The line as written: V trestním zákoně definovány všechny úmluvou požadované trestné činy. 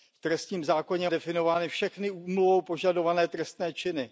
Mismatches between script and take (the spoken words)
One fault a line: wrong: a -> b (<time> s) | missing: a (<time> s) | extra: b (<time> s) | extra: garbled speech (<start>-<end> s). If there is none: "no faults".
no faults